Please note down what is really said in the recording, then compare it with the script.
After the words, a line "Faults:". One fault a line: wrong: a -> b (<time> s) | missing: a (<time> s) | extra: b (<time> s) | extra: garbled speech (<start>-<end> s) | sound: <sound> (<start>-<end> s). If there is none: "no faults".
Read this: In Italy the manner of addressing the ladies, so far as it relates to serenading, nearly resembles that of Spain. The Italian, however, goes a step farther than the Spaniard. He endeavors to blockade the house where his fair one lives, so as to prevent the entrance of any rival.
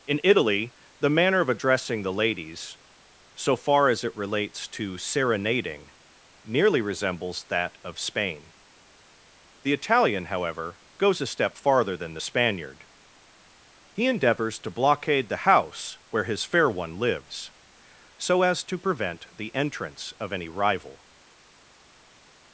In Italy the manner of addressing the ladies, so far as it relates to serenading, nearly resembles that of Spain. The Italian, however, goes a step farther than the Spaniard. He endeavors to blockade the house where his fair one lives, so as to prevent the entrance of any rival.
Faults:
no faults